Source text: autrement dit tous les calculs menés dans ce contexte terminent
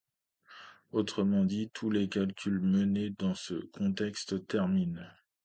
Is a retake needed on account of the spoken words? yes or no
no